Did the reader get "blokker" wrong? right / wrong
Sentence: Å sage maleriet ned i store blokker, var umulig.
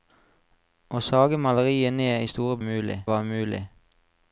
wrong